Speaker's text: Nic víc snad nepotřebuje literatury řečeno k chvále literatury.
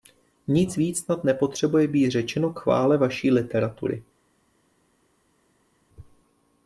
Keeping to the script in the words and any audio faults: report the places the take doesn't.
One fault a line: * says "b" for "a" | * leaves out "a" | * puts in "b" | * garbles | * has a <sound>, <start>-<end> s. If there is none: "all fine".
* says "být" for "literatury"
* puts in "vaší"